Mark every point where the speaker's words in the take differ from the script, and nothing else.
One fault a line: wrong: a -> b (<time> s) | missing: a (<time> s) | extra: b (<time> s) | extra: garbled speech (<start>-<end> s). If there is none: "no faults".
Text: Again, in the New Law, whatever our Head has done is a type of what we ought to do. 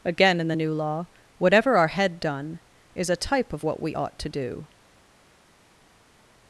missing: has (2.2 s)